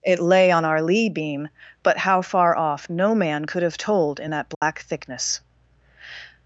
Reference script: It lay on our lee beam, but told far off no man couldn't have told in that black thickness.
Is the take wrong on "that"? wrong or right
right